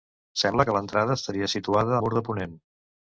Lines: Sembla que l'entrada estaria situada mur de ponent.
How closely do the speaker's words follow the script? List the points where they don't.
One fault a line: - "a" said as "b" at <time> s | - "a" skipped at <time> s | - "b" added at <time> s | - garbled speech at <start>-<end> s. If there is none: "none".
none